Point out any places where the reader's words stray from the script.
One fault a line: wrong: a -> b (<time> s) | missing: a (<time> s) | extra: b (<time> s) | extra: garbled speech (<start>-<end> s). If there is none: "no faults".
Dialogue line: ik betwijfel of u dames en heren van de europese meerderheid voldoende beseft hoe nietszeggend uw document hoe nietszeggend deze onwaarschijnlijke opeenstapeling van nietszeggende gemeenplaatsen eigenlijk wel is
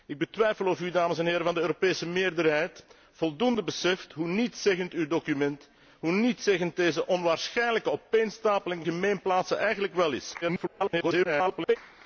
missing: van nietszeggende (8.8 s)
extra: garbled speech (10.4-11.8 s)